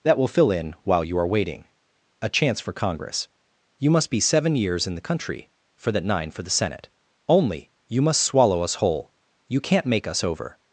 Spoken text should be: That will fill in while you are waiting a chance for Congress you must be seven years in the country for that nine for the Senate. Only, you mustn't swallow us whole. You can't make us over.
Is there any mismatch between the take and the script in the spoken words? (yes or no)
yes